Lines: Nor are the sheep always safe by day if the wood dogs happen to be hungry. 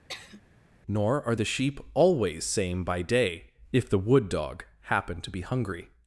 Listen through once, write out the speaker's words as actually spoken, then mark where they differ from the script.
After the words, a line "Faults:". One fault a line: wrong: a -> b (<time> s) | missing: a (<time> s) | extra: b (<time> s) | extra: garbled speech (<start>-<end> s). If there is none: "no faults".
Nor are the sheep always same by day if the wood dog happen to be hungry.
Faults:
wrong: safe -> same (2.4 s)
wrong: dogs -> dog (4.3 s)